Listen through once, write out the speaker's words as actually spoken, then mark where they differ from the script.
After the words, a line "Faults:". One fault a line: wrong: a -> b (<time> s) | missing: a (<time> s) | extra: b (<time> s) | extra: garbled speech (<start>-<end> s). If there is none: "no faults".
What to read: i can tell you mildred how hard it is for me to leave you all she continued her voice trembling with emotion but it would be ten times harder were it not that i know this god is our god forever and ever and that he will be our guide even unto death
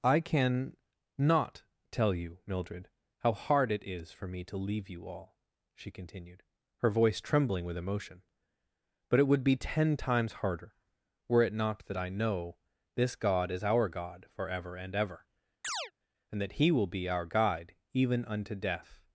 i can not tell you mildred how hard it is for me to leave you all she continued her voice trembling with emotion but it would be ten times harder were it not that i know this god is our god forever and ever and that he will be our guide even unto death
Faults:
extra: not (1.2 s)